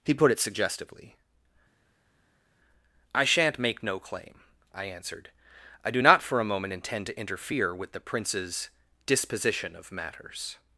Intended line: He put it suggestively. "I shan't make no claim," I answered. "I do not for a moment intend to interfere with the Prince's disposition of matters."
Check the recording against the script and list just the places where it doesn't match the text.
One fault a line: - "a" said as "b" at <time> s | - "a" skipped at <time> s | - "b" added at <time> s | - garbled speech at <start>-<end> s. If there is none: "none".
none